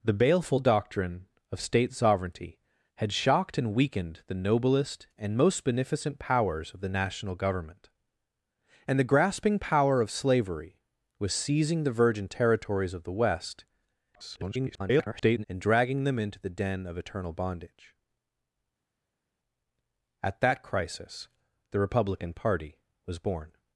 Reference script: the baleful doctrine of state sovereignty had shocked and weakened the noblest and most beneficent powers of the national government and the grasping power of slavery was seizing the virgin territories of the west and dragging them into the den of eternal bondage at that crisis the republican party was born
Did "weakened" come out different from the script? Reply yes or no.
no